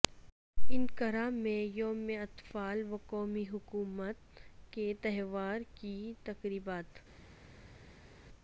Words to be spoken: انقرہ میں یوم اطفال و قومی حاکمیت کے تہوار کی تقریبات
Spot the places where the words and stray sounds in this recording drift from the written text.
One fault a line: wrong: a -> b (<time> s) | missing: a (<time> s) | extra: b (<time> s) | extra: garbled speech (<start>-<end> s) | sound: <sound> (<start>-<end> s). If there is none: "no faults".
no faults